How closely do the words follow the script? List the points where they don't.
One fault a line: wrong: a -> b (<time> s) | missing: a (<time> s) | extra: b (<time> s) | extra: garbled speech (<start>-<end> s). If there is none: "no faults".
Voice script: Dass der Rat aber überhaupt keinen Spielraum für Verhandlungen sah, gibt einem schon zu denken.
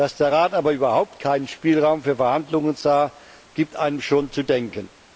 no faults